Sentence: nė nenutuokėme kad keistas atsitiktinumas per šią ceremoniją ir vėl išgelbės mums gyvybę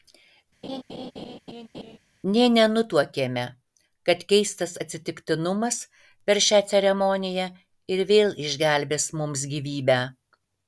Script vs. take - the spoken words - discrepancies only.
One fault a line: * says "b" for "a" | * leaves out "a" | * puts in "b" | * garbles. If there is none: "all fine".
all fine